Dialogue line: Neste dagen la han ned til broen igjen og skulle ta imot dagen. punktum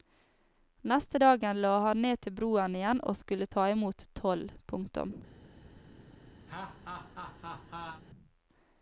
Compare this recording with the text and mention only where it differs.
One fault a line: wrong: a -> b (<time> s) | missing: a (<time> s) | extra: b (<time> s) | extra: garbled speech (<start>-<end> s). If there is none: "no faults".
wrong: dagen -> toll (4.2 s)